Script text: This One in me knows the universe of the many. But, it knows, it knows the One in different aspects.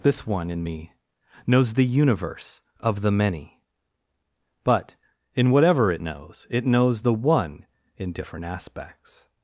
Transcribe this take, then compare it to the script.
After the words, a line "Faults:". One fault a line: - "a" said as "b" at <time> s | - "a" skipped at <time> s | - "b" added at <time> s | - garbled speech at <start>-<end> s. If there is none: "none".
This One in me knows the universe of the many. But, in whatever it knows, it knows the One in different aspects.
Faults:
- "in whatever" added at 5.3 s